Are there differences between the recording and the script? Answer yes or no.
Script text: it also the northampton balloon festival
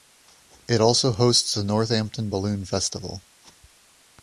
yes